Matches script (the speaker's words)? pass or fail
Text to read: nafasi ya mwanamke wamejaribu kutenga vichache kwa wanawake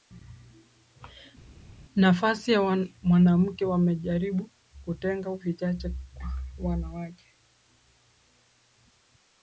pass